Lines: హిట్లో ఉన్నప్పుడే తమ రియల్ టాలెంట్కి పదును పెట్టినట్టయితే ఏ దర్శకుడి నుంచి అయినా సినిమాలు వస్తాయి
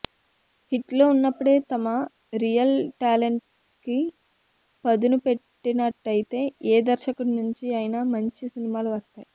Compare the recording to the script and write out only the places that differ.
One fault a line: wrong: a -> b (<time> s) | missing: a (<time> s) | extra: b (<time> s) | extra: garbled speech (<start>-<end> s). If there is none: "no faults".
extra: మంచి (8.1 s)